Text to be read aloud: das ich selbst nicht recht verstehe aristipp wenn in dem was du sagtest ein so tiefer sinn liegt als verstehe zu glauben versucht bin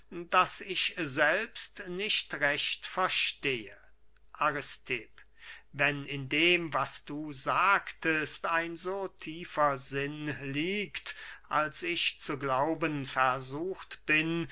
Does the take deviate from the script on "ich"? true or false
false